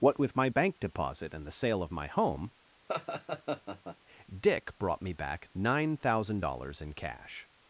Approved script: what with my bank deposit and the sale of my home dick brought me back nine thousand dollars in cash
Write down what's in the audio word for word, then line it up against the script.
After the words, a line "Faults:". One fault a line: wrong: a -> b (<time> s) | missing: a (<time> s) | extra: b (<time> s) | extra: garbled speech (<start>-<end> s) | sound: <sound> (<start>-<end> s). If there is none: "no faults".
what with my bank deposit and the sale of my home dick brought me back nine thousand dollars in cash
Faults:
sound: laugh (2.9-4.0 s)